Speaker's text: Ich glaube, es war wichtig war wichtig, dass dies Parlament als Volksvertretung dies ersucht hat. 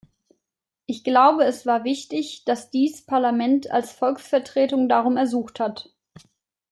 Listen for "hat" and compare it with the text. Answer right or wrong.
right